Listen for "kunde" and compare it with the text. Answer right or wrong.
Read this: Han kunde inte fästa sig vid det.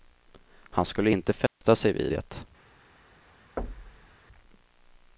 wrong